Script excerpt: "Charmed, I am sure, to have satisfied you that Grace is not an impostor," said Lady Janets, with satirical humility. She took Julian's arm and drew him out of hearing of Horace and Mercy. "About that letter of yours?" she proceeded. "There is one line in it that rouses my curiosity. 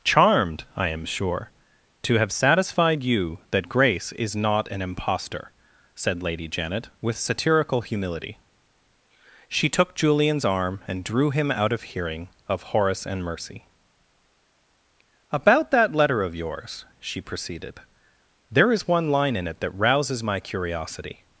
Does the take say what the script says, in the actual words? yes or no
no